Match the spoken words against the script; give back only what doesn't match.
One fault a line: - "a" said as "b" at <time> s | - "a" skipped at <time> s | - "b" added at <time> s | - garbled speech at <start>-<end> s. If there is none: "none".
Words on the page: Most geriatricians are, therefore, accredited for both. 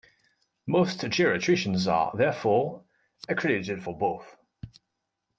none